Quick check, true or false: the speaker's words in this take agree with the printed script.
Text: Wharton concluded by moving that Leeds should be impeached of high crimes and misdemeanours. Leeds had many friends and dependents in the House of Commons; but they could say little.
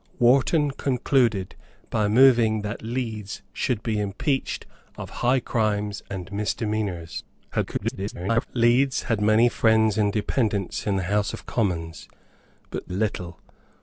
false